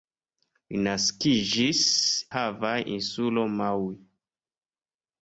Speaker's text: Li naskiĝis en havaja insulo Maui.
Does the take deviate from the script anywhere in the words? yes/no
yes